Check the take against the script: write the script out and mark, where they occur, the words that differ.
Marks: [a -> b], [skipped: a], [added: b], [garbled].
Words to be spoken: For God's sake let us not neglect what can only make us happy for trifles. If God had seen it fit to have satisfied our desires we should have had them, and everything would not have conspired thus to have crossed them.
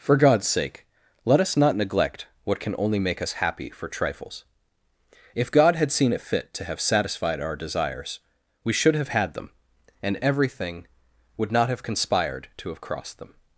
For God's sake let us not neglect what can only make us happy for trifles. If God had seen it fit to have satisfied our desires we should have had them, and everything would not have conspired [skipped: thus] to have crossed them.